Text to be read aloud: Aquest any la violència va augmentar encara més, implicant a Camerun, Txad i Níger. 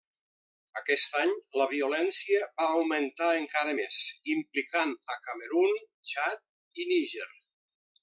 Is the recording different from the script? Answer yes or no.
no